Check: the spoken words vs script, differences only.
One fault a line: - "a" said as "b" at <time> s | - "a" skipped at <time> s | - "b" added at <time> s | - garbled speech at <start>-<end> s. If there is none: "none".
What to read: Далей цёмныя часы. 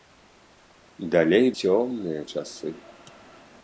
none